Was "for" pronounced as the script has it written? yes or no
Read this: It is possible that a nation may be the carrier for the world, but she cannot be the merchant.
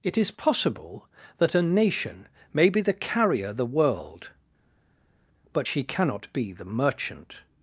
no